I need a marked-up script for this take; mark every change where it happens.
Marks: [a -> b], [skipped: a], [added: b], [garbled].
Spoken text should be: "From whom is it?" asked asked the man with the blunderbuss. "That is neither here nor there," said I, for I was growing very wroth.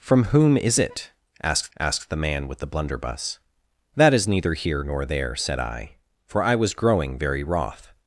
"From whom is it?" asked asked the man with the blunderbuss. "That is neither here nor there," said I, for I was growing very wroth.